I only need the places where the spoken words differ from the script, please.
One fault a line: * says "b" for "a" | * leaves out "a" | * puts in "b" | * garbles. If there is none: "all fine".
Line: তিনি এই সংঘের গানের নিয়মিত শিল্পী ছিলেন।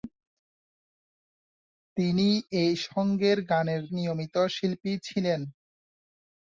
all fine